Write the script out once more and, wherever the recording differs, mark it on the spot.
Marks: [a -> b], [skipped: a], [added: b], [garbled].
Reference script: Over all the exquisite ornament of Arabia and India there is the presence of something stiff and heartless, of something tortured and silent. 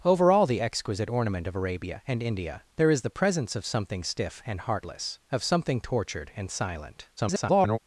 Over all the exquisite ornament of Arabia and India there is the presence of something stiff and heartless, of something tortured and silent. [garbled]